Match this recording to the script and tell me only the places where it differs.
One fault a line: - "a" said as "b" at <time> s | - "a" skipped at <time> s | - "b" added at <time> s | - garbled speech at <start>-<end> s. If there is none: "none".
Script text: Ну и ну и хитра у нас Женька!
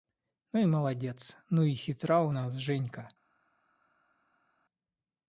- "молодец" added at 0.7 s